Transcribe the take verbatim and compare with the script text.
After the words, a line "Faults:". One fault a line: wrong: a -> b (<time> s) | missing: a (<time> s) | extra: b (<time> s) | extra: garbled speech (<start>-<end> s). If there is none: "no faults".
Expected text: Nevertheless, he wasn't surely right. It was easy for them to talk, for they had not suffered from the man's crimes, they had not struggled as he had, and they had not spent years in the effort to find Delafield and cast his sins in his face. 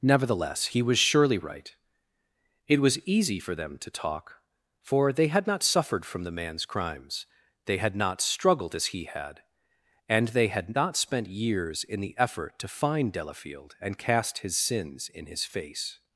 Nevertheless, he was surely right. It was easy for them to talk, for they had not suffered from the man's crimes, they had not struggled as he had, and they had not spent years in the effort to find Delafield and cast his sins in his face.
Faults:
wrong: wasn't -> was (0.8 s)